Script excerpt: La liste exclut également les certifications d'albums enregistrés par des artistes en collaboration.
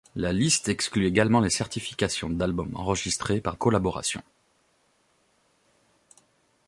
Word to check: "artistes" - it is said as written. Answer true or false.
false